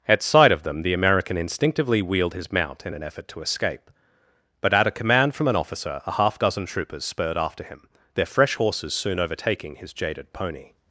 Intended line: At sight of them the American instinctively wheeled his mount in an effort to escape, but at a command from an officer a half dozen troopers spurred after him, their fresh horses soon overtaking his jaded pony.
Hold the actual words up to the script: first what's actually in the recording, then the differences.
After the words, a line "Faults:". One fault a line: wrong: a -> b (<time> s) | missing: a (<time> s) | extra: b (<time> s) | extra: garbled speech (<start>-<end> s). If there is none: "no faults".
At sight of them the American instinctively wheeled his mount in an effort to escape, but at a command from an officer a half dozen troopers spurred after him, their fresh horses soon overtaking his jaded pony.
Faults:
no faults